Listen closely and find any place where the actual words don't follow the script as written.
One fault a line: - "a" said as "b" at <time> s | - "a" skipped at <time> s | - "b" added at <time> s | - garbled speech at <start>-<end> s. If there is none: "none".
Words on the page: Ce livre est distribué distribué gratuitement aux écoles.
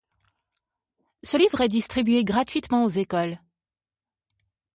- "distribué" skipped at 2.2 s